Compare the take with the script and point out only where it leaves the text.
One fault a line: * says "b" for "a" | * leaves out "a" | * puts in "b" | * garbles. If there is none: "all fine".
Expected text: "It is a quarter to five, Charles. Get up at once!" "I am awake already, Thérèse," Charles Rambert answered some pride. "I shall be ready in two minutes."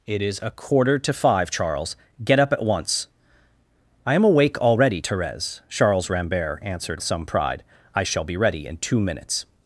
all fine